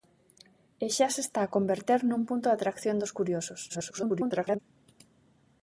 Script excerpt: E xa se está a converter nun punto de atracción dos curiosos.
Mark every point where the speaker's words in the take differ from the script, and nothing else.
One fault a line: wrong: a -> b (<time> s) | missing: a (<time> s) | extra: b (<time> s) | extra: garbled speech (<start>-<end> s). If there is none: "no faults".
extra: garbled speech (3.7-4.6 s)